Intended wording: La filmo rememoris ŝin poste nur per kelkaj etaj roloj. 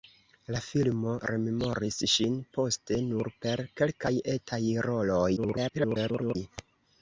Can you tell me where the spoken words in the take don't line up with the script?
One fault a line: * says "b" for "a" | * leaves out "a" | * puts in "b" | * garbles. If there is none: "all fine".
* garbles